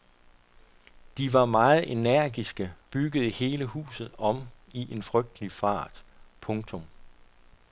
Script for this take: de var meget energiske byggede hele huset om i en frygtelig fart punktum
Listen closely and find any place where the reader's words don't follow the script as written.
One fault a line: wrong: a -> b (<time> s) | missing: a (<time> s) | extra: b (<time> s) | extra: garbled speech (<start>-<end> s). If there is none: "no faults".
no faults